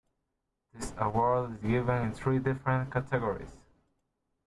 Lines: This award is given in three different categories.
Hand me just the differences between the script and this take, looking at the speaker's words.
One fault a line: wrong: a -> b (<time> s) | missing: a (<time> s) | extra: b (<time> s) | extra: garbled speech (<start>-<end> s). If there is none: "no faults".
no faults